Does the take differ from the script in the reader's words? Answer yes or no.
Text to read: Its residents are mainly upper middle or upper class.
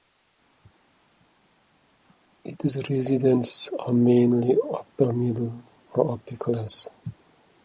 no